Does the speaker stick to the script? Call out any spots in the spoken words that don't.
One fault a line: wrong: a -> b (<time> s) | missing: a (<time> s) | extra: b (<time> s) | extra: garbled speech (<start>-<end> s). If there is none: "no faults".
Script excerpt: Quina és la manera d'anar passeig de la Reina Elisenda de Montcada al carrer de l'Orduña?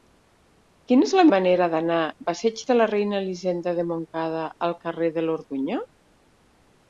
no faults